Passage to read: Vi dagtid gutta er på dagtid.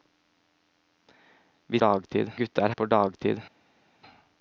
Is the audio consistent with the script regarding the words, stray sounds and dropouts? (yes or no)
yes